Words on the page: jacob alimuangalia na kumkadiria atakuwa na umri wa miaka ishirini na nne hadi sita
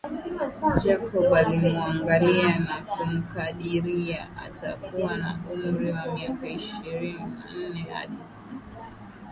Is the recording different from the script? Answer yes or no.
no